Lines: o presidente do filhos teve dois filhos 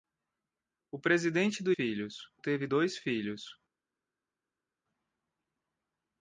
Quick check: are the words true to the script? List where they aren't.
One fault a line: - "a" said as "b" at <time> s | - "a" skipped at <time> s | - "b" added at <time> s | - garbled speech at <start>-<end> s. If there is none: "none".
none